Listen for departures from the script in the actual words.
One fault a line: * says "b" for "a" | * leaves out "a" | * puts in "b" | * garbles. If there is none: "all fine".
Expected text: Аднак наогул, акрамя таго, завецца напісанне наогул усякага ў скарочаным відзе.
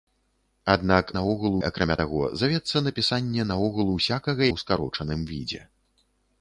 all fine